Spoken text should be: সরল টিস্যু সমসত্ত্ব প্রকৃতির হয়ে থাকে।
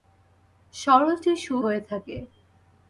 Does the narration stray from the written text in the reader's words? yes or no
yes